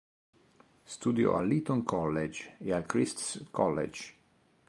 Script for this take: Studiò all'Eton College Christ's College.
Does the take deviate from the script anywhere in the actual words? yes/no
yes